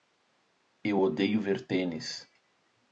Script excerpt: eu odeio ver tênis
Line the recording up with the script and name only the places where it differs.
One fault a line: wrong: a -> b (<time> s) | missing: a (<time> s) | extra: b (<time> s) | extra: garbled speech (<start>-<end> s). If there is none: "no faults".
no faults